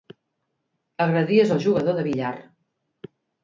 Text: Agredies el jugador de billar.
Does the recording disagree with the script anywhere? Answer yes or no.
no